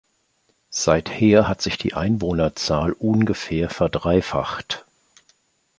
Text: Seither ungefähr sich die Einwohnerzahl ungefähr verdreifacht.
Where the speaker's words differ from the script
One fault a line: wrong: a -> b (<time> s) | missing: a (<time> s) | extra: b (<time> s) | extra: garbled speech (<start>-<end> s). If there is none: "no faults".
wrong: ungefähr -> hat (1.5 s)